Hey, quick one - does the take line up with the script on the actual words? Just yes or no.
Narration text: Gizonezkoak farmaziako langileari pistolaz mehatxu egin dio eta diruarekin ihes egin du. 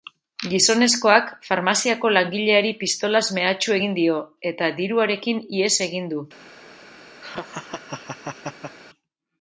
yes